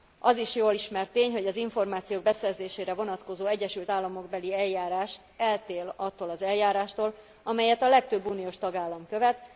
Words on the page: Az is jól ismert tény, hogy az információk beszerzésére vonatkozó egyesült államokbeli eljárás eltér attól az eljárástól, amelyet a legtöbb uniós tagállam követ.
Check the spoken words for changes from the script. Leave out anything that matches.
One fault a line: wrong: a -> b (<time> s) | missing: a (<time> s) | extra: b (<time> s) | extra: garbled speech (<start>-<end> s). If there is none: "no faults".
no faults